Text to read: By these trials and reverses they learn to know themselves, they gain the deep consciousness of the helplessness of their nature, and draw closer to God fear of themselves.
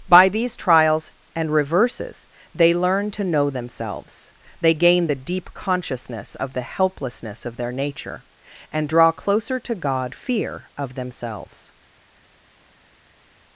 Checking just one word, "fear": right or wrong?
right